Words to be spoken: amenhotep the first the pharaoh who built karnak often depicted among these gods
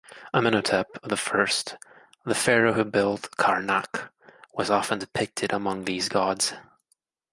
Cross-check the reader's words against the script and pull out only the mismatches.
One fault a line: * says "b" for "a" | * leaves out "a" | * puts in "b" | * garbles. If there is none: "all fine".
* puts in "was"